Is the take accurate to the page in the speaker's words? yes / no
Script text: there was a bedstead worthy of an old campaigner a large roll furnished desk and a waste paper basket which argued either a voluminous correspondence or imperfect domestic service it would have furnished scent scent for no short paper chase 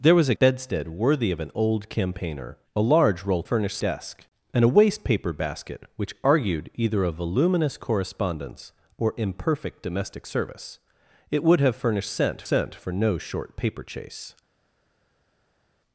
yes